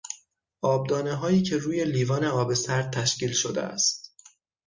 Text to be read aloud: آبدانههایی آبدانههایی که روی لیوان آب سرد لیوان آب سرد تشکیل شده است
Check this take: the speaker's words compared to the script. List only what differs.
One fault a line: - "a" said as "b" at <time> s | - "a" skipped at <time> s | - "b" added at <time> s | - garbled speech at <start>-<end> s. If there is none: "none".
- "آبدانههایی" skipped at 1.4 s
- "لیوان آب سرد" skipped at 2.9 s